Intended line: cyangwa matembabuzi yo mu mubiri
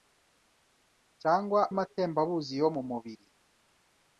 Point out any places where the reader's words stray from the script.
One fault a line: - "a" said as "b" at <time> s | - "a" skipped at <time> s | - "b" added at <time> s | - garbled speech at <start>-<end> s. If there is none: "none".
none